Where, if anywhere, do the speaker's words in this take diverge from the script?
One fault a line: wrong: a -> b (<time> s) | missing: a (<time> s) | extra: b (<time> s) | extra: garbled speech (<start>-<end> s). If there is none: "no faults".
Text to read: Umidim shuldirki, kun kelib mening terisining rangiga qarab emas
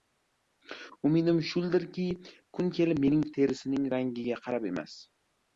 no faults